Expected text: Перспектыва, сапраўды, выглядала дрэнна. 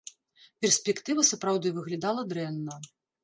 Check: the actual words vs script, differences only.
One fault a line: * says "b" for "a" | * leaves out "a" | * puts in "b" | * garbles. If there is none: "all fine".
all fine